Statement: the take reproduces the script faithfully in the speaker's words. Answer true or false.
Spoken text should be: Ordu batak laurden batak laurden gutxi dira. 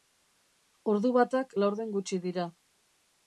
false